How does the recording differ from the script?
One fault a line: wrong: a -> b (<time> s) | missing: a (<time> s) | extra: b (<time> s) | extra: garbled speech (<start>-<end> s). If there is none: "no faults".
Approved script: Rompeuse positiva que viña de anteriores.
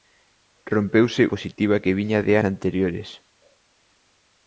no faults